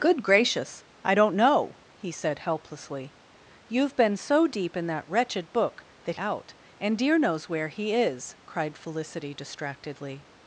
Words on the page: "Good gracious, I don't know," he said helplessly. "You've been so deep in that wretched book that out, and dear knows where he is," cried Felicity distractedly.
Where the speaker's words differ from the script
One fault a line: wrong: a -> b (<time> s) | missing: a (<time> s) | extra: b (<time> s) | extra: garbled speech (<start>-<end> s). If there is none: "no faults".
no faults